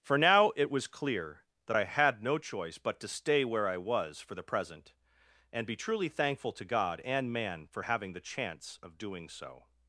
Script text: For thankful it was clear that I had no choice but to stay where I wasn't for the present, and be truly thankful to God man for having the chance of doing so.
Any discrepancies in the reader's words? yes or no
yes